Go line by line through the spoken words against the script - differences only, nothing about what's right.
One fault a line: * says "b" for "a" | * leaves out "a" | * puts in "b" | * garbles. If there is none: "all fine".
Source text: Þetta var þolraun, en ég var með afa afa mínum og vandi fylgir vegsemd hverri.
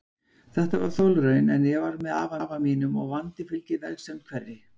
all fine